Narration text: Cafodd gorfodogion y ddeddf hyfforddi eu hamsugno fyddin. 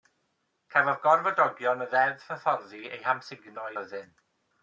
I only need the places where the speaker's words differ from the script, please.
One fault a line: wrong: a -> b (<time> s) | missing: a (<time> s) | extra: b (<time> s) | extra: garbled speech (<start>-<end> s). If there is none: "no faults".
no faults